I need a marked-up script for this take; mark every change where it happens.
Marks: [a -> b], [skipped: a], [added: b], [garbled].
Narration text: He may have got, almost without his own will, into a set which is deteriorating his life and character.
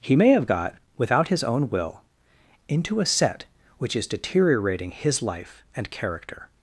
He may have got, [skipped: almost] without his own will, into a set which is deteriorating his life and character.